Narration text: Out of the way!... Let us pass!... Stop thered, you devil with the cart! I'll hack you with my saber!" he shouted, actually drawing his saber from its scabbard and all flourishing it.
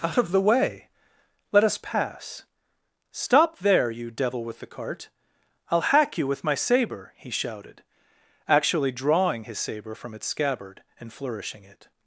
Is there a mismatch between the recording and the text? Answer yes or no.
yes